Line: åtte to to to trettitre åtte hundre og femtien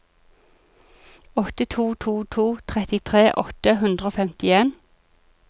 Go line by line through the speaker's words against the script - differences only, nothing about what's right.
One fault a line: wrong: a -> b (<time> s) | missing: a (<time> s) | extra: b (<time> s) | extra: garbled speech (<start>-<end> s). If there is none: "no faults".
no faults